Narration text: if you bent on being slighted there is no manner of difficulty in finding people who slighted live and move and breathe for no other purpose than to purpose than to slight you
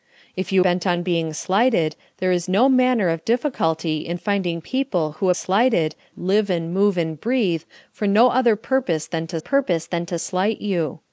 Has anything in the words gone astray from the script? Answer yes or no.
no